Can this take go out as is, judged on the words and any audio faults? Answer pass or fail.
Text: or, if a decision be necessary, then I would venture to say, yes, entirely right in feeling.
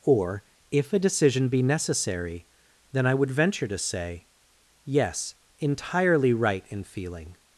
pass